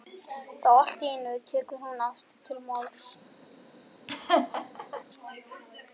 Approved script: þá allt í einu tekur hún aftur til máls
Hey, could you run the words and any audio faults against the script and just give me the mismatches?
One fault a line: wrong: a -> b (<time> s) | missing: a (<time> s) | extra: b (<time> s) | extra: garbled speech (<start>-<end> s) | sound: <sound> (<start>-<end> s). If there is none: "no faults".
sound: laugh (4.1-5.0 s)